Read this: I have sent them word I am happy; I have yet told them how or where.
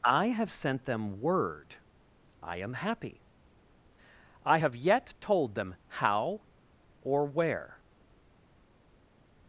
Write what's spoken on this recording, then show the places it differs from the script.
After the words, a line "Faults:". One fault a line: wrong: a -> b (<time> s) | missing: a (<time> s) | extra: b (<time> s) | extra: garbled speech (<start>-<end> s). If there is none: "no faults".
I have sent them word I am happy; I have yet told them how or where.
Faults:
no faults